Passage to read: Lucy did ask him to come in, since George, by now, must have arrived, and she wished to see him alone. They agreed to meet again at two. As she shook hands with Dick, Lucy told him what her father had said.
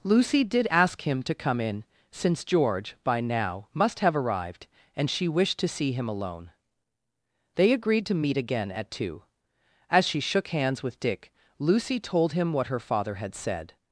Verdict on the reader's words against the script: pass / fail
pass